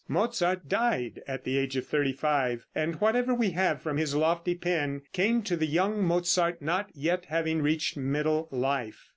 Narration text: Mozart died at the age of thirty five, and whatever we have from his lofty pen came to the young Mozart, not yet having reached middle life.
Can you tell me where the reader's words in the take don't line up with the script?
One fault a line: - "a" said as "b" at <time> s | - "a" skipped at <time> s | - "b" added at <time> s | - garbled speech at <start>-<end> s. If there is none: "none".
none